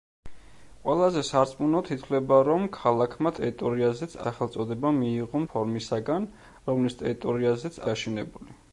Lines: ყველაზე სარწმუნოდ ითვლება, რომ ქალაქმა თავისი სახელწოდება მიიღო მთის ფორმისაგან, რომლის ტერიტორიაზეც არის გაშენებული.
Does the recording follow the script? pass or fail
fail